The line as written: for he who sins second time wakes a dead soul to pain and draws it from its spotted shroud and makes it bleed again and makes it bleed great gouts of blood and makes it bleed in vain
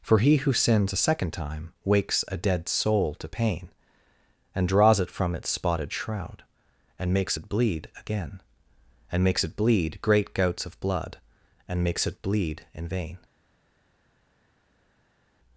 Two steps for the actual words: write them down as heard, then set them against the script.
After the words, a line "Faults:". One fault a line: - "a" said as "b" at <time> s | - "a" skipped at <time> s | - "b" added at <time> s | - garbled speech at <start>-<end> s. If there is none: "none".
for he who sins a second time wakes a dead soul to pain and draws it from its spotted shroud and makes it bleed again and makes it bleed great gouts of blood and makes it bleed in vain
Faults:
- "a" added at 0.9 s